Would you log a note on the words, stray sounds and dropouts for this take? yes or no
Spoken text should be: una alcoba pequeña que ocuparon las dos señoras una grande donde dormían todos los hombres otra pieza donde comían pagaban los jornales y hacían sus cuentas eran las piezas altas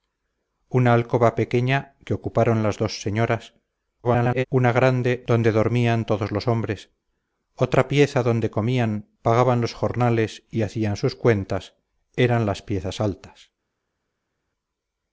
yes